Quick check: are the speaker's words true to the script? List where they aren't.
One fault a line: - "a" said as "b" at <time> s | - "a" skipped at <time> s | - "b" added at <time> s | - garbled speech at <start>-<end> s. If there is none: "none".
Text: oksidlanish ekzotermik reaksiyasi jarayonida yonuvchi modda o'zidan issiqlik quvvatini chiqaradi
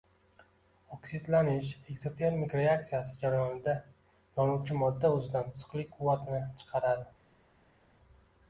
none